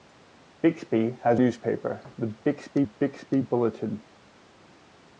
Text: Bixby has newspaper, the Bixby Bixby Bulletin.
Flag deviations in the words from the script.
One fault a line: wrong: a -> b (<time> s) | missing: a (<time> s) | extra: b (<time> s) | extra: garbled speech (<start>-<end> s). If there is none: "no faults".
no faults